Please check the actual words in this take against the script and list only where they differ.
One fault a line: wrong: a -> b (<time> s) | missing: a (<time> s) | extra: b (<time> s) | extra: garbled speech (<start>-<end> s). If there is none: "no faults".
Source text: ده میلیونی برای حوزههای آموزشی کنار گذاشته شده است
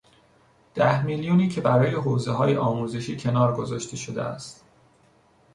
extra: که (1.5 s)